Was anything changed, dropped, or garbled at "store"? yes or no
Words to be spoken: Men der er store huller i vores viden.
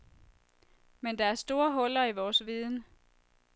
no